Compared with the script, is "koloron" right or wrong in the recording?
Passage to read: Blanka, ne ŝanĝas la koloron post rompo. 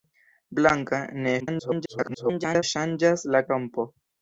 wrong